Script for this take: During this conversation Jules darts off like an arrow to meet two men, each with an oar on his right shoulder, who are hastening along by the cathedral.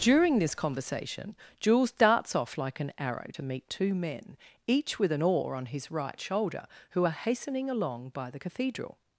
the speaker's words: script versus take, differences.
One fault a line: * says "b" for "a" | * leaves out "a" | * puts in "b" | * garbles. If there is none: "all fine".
all fine